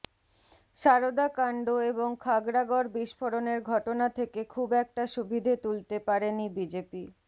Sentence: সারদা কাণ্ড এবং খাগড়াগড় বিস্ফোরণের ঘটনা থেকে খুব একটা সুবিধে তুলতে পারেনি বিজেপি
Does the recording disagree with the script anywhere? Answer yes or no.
no